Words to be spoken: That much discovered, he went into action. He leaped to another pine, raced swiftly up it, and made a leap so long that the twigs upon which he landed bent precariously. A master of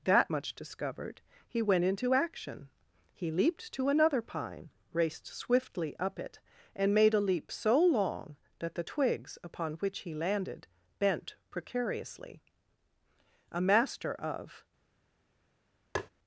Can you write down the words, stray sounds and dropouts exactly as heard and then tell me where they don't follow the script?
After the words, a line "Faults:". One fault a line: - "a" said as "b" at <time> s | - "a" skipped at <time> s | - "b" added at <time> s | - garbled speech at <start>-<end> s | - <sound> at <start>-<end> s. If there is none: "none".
That much discovered, he went into action. He leaped to another pine, raced swiftly up it, and made a leap so long that the twigs upon which he landed bent precariously. A master of
Faults:
- tap at 15.9-16.1 s